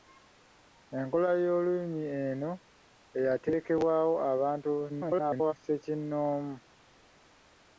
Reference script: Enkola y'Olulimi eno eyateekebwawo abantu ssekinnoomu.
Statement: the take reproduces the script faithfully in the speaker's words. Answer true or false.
false